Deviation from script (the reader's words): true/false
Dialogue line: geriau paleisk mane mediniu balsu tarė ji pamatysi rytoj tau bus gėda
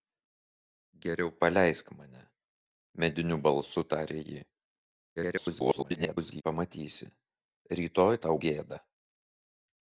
true